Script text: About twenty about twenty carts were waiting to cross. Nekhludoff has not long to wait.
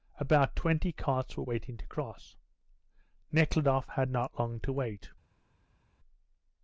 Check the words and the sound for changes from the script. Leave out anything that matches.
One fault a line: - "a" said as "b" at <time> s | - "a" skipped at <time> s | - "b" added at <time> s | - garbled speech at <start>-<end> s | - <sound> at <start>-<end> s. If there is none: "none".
- "about twenty" skipped at 0.9 s
- "has" said as "had" at 3.9 s